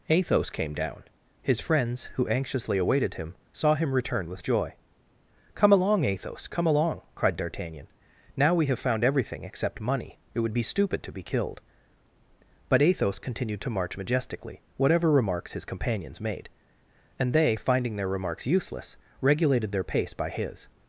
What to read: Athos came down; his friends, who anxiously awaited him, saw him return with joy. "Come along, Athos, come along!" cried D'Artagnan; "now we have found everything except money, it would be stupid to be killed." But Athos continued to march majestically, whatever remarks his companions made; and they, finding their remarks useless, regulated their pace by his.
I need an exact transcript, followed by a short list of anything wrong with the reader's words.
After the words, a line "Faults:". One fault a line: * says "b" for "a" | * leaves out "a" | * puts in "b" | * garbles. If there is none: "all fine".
Athos came down; his friends, who anxiously awaited him, saw him return with joy. "Come along, Athos, come along!" cried D'Artagnan; "now we have found everything except money, it would be stupid to be killed." But Athos continued to march majestically, whatever remarks his companions made; and they, finding their remarks useless, regulated their pace by his.
Faults:
all fine